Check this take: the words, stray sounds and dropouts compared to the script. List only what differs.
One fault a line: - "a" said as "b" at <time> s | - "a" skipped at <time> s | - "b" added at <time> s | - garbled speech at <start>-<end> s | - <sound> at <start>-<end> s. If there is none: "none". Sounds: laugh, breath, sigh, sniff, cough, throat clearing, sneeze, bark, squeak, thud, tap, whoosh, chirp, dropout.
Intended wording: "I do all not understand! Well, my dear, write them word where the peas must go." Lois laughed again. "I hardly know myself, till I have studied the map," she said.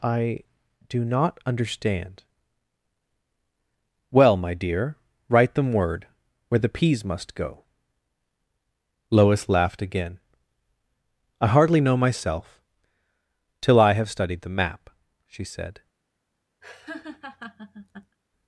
- "all" skipped at 1.1 s
- laugh at 16.6-18.2 s